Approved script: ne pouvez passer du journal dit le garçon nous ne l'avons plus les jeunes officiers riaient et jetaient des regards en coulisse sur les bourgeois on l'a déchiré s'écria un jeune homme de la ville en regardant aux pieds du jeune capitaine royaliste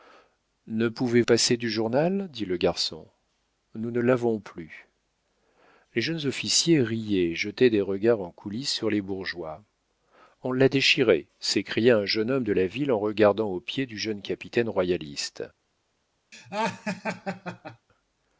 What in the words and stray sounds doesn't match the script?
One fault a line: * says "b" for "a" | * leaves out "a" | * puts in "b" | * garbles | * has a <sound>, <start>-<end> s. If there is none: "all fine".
* has a laugh, 16.3-17.9 s